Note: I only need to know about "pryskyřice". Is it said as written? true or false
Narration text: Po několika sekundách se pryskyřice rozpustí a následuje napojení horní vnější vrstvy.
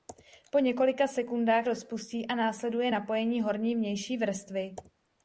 false